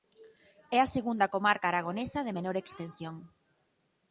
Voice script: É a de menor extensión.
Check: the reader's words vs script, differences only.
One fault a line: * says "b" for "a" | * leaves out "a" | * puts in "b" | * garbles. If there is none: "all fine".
* puts in "segunda comarca aragonesa"